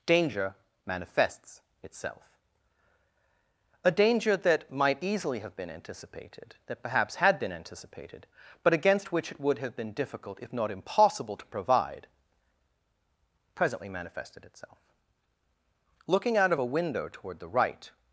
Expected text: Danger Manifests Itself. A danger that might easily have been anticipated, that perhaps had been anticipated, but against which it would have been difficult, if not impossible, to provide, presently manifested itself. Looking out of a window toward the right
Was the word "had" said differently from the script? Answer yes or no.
no